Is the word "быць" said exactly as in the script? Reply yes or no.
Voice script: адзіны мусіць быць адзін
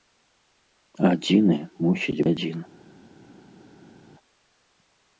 no